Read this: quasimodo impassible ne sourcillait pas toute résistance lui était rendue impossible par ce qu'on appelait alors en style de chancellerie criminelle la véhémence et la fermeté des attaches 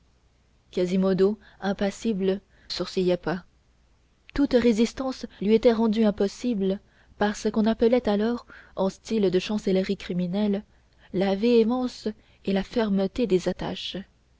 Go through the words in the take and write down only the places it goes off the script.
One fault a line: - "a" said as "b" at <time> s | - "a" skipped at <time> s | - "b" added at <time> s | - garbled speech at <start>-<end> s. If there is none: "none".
- "ne" skipped at 2.4 s